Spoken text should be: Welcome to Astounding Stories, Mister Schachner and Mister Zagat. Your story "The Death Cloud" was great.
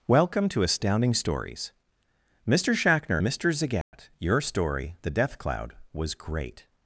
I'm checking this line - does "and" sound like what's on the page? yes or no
no